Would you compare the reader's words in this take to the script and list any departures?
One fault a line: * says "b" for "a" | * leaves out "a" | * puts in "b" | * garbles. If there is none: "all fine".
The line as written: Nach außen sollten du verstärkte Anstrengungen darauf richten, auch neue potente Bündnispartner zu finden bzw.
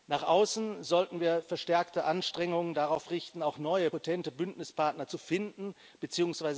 * says "wir" for "du"